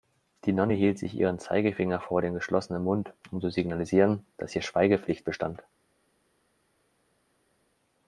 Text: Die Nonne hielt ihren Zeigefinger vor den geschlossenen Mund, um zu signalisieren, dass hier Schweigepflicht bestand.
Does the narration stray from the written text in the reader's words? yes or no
yes